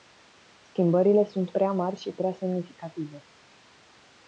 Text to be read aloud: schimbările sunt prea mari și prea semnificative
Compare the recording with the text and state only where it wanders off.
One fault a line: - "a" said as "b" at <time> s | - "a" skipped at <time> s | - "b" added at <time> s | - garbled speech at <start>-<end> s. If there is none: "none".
none